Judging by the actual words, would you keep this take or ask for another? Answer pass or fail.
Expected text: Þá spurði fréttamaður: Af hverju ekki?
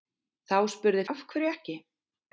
fail